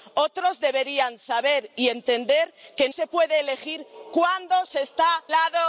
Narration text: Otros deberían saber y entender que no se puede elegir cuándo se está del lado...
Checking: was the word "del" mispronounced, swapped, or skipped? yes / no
yes